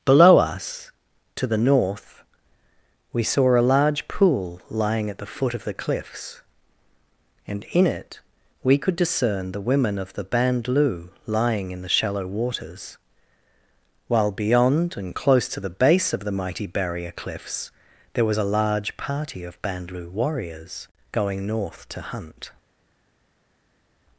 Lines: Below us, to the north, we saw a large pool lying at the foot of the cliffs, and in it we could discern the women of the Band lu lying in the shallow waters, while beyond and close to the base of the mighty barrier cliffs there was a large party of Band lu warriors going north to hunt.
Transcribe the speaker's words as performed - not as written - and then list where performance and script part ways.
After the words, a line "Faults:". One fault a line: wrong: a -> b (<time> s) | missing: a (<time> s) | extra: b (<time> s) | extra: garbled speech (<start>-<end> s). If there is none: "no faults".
Below us, to the north, we saw a large pool lying at the foot of the cliffs, and in it we could discern the women of the Band lu lying in the shallow waters, while beyond and close to the base of the mighty barrier cliffs there was a large party of Band lu warriors going north to hunt.
Faults:
no faults